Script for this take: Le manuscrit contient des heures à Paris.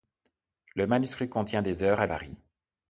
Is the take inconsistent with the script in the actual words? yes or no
no